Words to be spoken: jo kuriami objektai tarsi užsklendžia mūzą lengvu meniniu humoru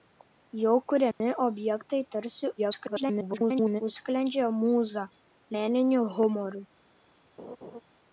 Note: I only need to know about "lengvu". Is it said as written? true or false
false